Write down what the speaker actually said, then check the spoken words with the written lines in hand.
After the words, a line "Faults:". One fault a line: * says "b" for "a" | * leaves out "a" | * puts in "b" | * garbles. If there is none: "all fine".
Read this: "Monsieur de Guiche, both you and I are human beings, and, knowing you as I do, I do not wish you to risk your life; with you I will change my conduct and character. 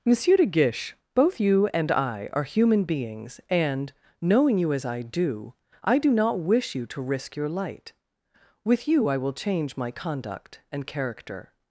"Monsieur de Guiche, both you and I are human beings, and, knowing you as I do, I do not wish you to risk your light; with you I will change my conduct and character.
Faults:
* says "light" for "life"